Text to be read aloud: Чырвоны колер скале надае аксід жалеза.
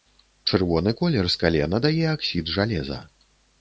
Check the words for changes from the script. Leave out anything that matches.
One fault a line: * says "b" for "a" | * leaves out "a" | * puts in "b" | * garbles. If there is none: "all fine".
all fine